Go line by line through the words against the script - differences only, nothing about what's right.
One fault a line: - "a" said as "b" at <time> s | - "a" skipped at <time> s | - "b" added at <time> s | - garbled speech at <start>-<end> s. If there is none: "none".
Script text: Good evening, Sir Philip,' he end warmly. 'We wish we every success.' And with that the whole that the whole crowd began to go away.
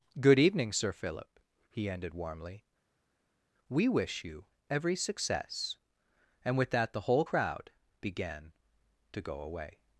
- "end" said as "ended" at 1.9 s
- "we" said as "you" at 4.2 s
- "that the whole" skipped at 7.3 s